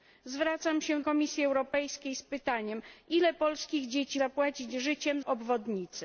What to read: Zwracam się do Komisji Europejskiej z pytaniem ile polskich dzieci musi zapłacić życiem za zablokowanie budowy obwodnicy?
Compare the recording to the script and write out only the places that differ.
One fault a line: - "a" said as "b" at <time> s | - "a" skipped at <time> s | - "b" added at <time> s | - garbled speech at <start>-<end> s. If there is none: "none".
- "do" skipped at 1.0 s
- "musi" skipped at 4.2 s
- "za zablokowanie budowy" skipped at 5.2 s